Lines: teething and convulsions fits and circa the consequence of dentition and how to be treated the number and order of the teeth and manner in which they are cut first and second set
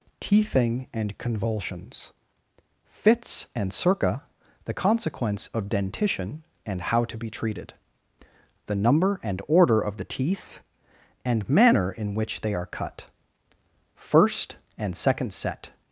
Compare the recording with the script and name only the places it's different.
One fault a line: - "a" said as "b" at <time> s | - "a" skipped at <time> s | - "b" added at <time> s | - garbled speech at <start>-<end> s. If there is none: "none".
none